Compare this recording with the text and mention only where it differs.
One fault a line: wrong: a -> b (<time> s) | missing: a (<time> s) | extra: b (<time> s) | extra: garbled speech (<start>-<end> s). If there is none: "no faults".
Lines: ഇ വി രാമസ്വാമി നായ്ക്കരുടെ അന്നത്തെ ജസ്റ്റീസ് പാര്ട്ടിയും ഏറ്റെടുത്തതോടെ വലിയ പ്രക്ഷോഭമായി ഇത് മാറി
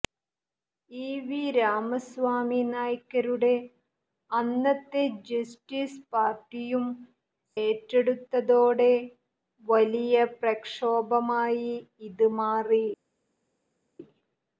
no faults